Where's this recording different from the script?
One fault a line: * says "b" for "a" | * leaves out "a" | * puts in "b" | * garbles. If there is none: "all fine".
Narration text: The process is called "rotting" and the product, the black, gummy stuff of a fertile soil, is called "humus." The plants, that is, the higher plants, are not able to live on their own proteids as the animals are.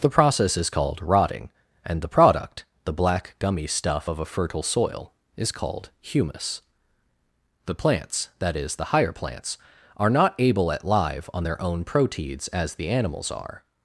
* says "at" for "to"